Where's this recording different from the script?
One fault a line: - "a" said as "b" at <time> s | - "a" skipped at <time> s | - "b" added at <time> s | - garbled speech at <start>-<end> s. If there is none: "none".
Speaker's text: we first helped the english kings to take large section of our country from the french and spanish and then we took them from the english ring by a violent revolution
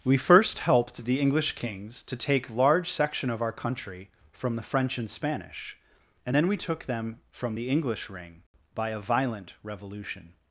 none